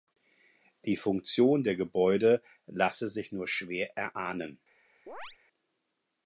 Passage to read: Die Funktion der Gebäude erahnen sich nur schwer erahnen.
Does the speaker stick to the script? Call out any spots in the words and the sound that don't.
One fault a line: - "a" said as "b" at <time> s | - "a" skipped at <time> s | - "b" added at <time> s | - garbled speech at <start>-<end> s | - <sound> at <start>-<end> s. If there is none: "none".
- "erahnen" said as "lasse" at 2.6 s
- chirp at 5.1-5.4 s